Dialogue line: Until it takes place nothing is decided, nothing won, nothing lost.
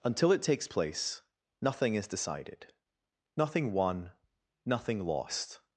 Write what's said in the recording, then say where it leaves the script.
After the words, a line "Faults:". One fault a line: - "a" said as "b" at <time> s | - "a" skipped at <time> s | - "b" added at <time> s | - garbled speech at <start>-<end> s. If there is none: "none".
Until it takes place nothing is decided, nothing won, nothing lost.
Faults:
none